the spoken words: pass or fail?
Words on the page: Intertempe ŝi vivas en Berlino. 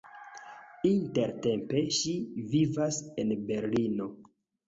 pass